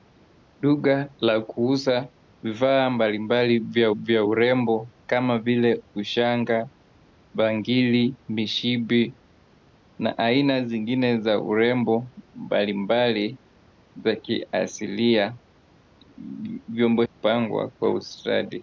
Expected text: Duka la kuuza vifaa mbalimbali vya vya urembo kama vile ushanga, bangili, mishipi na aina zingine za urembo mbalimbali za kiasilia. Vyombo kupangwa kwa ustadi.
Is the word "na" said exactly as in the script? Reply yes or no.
yes